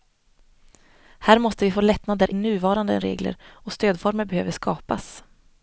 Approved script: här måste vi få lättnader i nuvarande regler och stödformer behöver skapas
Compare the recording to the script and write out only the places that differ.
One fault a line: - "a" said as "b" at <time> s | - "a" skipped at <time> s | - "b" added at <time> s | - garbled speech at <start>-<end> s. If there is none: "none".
- "i" skipped at 2.3 s